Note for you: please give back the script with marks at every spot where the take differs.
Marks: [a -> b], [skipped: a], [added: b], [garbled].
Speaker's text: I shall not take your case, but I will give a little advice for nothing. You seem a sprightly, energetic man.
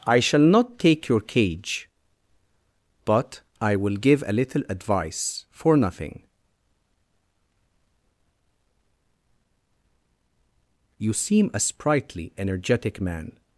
I shall not take your [case, -> cage] but I will give a little advice for nothing. You seem a sprightly, energetic man.